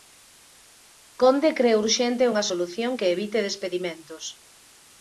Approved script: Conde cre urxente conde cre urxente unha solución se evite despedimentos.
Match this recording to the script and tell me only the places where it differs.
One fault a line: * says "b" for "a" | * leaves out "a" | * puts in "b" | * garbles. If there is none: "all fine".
* leaves out "conde cre urxente"
* says "que" for "se"